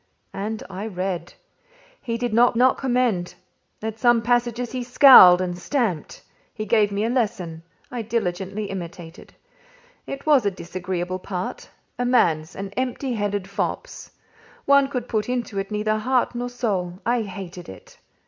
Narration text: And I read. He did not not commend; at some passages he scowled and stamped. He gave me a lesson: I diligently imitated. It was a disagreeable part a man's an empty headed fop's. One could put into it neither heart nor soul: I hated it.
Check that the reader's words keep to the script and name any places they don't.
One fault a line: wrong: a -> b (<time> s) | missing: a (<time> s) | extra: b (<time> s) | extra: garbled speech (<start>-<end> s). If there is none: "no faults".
no faults